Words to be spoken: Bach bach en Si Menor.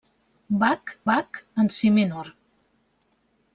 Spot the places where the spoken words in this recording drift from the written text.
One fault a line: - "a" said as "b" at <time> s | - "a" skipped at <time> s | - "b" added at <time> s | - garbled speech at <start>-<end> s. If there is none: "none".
none